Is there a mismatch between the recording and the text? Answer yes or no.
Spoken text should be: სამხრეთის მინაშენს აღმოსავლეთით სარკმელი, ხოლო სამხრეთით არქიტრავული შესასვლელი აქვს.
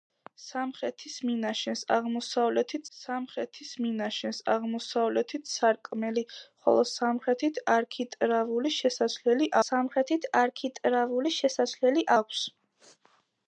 yes